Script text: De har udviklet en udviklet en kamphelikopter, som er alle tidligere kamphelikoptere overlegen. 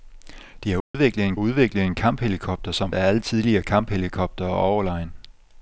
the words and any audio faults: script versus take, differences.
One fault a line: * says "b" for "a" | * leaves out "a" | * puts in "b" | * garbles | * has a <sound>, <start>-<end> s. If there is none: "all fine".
* has a dropout, 0.8-0.9 s